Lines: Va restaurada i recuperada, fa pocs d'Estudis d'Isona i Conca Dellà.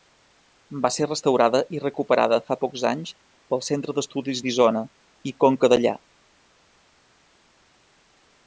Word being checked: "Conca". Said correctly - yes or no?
yes